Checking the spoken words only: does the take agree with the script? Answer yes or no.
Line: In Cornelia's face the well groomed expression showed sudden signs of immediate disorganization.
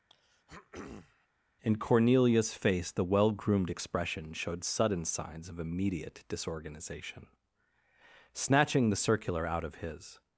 no